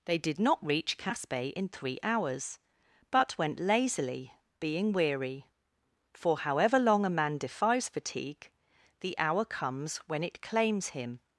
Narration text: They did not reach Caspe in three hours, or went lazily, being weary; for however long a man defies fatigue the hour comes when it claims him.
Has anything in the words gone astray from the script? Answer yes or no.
yes